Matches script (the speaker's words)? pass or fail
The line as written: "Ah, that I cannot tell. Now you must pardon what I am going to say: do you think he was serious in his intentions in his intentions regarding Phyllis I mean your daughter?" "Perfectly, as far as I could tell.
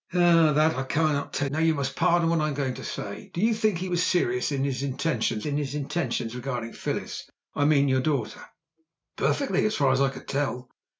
pass